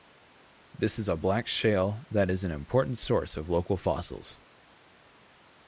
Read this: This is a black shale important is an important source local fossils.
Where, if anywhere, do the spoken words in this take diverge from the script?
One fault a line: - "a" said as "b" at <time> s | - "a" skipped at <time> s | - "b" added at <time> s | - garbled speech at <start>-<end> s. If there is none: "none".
- "important" said as "that" at 2.1 s
- "of" added at 3.4 s